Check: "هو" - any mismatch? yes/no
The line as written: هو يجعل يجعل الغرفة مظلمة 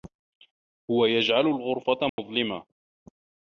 no